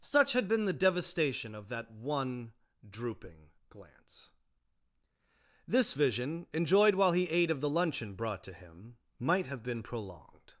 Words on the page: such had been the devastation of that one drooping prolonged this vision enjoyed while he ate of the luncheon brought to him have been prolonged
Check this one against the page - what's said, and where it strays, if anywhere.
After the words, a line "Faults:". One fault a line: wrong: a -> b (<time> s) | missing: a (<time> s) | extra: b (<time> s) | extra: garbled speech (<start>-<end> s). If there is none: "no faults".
such had been the devastation of that one drooping glance this vision enjoyed while he ate of the luncheon brought to him might have been prolonged
Faults:
wrong: prolonged -> glance (3.7 s)
extra: might (9.2 s)